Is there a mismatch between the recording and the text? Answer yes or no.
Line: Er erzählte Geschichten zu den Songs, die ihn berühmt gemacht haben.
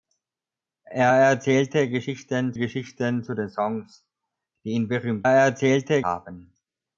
yes